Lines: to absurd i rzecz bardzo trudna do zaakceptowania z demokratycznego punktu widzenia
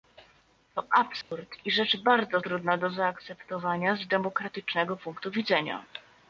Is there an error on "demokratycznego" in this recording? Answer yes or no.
no